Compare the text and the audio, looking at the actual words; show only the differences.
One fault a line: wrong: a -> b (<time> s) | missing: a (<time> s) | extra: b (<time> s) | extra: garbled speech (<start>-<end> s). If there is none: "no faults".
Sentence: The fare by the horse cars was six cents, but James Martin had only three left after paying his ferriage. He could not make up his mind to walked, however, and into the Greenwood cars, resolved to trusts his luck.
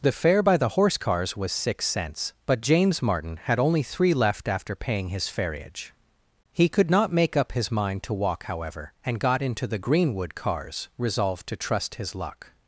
wrong: walked -> walk (8.1 s)
extra: got (9.2 s)
wrong: trusts -> trust (11.6 s)